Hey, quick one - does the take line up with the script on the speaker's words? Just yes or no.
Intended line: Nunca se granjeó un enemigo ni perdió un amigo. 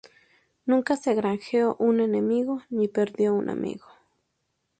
yes